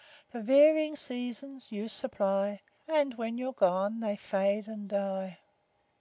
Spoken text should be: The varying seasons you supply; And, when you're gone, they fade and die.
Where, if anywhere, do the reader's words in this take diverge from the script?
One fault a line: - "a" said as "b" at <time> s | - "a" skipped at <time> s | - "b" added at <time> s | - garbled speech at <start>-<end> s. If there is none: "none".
none